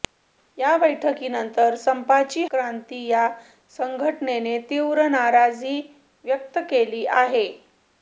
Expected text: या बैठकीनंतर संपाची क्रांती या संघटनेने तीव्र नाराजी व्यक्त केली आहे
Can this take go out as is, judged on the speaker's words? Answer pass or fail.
pass